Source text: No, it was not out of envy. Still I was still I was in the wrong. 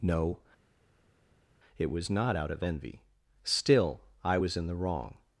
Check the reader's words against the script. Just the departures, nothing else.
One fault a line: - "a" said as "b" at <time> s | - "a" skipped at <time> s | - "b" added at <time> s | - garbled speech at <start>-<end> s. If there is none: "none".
- "still I was" skipped at 4.6 s